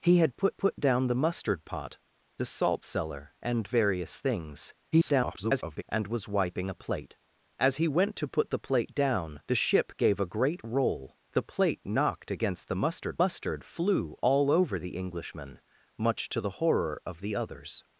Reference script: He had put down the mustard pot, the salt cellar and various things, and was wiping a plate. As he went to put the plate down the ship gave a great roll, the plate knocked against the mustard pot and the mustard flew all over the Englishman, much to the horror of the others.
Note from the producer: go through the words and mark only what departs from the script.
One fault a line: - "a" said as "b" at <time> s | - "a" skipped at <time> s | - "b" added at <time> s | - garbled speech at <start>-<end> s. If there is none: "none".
- "put" added at 0.6 s
- garbled speech at 4.9-5.8 s
- "pot and the" skipped at 13.2 s